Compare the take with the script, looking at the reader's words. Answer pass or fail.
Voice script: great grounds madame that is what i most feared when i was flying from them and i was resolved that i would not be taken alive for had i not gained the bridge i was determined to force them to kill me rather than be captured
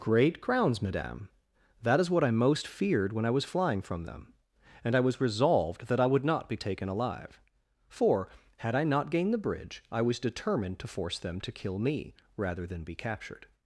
fail